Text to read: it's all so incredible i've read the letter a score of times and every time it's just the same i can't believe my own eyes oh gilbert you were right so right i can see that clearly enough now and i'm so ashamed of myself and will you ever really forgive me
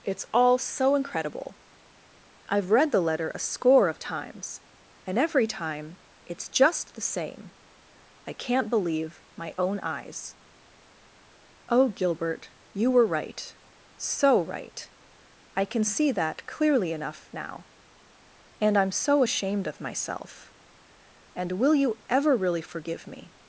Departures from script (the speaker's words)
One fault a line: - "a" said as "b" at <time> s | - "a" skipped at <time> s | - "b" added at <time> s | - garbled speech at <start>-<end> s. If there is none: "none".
none